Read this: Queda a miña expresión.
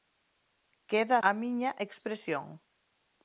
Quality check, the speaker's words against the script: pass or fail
pass